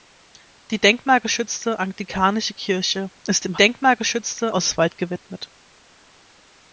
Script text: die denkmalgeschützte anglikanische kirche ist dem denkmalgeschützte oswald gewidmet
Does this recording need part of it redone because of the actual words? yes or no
no